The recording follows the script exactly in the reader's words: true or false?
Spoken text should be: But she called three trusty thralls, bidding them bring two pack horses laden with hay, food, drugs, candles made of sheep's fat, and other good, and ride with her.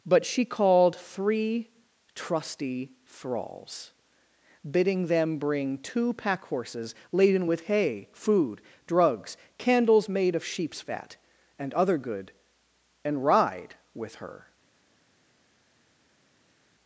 true